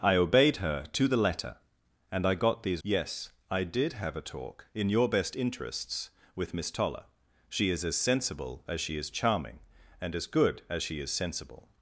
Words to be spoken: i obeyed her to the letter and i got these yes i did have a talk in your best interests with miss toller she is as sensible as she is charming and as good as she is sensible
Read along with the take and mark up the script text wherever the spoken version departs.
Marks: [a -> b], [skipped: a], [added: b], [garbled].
i obeyed her to the letter and i got these yes i did have a talk in your best interests with miss toller she is as sensible as she is charming and as good as she is sensible